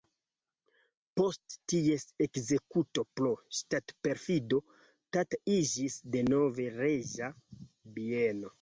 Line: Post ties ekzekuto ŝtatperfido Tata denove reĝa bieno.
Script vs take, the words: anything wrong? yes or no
yes